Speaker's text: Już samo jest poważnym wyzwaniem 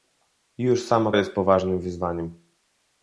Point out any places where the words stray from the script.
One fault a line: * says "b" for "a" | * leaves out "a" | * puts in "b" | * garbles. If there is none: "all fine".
all fine